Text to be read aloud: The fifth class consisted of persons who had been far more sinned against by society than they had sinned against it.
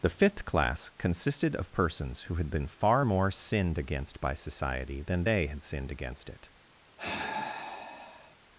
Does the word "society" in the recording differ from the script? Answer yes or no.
no